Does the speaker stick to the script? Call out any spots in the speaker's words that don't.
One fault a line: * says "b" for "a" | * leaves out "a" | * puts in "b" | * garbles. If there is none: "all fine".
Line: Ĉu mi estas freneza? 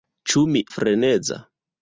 * leaves out "estas"